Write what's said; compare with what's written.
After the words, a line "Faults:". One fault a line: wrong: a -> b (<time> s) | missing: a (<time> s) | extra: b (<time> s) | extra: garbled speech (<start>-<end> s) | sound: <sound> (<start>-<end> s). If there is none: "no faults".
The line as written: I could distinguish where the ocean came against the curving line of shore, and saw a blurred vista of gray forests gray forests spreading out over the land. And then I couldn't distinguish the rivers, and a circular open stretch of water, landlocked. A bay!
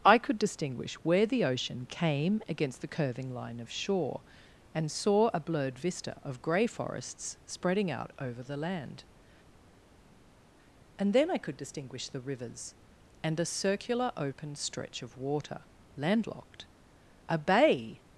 I could distinguish where the ocean came against the curving line of shore, and saw a blurred vista of gray forests spreading out over the land. And then I could distinguish the rivers, and a circular open stretch of water, landlocked. A bay!
Faults:
missing: gray forests (7.4 s)
wrong: couldn't -> could (11.4 s)